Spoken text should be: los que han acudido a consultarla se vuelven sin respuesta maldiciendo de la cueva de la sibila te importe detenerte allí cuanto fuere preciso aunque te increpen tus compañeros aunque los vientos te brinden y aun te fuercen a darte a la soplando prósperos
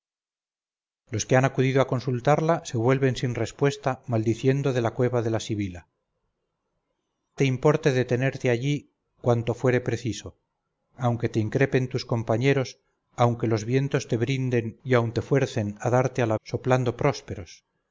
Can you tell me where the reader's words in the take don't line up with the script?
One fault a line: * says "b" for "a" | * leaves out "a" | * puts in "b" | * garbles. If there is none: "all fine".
all fine